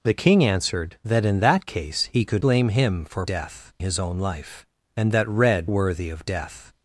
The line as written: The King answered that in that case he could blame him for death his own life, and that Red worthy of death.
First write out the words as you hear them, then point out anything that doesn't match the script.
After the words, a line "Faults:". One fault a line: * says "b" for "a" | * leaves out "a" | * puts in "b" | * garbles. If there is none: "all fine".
The King answered that in that case he could blame him for death his own life, and that Red worthy of death.
Faults:
all fine